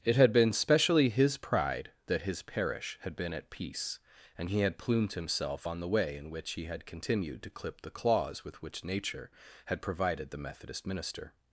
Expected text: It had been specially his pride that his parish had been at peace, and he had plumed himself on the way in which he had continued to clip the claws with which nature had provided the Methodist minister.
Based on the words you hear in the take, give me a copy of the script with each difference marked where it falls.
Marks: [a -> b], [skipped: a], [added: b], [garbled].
It had been specially his pride that his parish had been at peace, and he had plumed himself on the way in which he had continued to clip the claws with which nature had provided the Methodist minister.